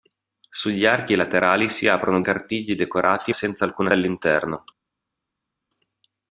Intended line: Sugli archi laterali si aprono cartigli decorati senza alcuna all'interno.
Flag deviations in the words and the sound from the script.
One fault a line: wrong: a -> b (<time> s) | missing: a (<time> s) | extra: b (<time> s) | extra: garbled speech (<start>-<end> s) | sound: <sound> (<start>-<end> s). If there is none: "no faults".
no faults